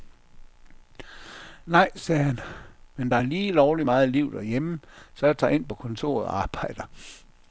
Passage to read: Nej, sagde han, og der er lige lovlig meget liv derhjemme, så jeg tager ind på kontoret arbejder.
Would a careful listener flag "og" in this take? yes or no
yes